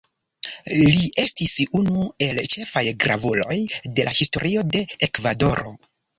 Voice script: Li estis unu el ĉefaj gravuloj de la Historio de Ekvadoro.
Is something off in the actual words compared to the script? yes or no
no